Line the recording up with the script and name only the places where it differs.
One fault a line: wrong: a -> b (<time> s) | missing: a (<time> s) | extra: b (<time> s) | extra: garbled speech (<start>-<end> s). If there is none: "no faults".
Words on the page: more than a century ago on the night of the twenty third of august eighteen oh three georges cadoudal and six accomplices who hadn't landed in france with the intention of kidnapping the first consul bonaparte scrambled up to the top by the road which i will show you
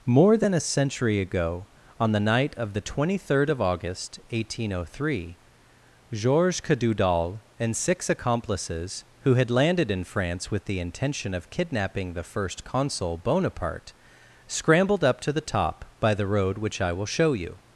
wrong: hadn't -> had (9.3 s)